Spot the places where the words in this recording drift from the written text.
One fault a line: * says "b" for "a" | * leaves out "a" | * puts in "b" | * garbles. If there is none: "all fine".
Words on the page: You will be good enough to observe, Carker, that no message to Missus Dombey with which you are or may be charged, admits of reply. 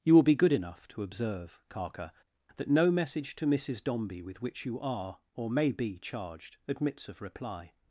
all fine